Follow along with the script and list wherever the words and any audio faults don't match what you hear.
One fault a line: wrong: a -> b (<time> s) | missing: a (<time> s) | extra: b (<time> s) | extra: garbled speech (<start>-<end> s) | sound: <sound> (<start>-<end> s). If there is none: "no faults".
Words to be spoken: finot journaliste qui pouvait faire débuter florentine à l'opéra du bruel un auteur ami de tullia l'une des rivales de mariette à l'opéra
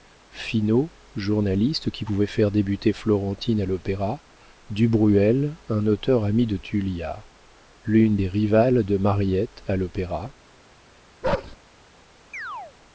sound: bark (11.2-11.6 s)
sound: chirp (12.3-12.7 s)